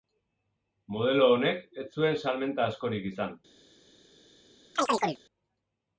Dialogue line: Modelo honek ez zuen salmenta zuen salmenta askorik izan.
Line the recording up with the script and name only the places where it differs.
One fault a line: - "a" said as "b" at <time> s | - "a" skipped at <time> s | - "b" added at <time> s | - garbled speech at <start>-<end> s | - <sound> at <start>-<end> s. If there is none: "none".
- "zuen salmenta" skipped at 2.7 s
- chirp at 4.8-5.2 s